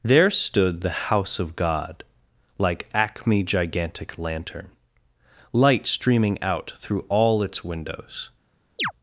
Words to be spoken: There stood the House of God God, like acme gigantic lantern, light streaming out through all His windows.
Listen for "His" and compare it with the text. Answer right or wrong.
wrong